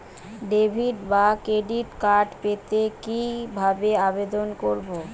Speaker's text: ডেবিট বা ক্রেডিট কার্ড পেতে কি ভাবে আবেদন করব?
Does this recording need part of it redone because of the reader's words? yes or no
no